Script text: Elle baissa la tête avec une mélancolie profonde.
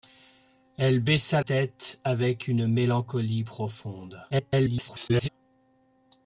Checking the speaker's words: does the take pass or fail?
fail